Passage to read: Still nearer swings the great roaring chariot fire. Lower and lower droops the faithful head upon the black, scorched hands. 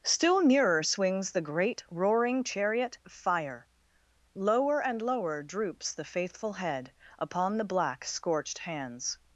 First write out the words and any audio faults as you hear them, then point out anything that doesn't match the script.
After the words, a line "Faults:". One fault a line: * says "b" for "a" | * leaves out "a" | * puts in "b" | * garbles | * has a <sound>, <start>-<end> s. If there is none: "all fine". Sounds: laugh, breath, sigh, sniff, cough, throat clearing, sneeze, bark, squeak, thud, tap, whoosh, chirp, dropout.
Still nearer swings the great roaring chariot fire. Lower and lower droops the faithful head upon the black, scorched hands.
Faults:
all fine